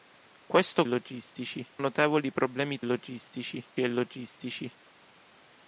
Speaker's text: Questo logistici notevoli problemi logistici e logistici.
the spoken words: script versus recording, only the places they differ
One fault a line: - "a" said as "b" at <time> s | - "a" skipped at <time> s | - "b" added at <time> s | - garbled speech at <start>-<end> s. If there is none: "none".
none